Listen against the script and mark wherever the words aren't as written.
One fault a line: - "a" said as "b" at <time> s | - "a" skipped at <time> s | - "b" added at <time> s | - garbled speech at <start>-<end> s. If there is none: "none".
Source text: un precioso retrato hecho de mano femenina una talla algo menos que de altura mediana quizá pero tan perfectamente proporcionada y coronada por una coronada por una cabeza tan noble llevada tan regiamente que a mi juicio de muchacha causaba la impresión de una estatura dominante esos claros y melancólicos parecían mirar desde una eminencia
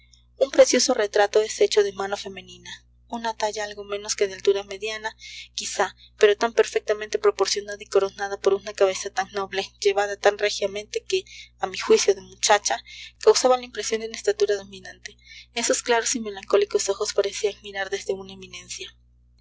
- "es" added at 1.4 s
- "coronada por una" skipped at 8.7 s
- "ojos" added at 16.9 s